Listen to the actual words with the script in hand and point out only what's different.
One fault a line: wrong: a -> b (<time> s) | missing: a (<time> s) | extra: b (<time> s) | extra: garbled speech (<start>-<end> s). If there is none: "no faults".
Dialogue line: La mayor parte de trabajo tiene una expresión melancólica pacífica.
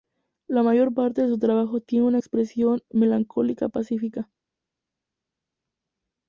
extra: su (1.3 s)